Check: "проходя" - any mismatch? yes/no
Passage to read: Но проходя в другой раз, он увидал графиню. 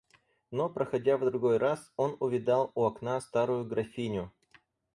no